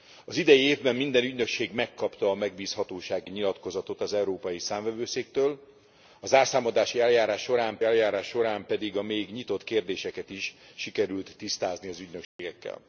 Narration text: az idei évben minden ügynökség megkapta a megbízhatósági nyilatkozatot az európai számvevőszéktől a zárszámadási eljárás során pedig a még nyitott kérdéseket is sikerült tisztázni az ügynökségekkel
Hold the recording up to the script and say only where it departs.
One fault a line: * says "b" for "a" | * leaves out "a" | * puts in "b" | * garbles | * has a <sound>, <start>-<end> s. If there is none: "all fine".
* puts in "eljárás során"
* has a dropout, 12.2-12.4 s